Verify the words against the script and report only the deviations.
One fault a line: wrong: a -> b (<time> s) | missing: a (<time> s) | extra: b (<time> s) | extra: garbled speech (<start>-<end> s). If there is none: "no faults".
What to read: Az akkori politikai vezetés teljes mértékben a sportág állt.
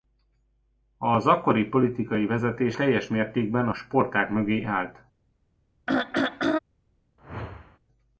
extra: mögé (4.3 s)